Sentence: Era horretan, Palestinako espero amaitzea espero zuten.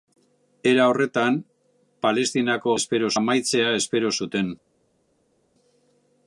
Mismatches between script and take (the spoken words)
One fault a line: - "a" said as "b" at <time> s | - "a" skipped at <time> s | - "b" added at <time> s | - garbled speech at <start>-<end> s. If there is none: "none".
none